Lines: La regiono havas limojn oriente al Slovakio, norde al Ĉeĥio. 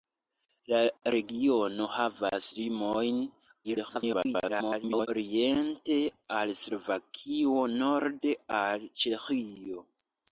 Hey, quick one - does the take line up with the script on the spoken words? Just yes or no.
no